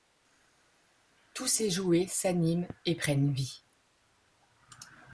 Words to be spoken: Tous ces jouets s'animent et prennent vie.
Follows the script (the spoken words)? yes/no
yes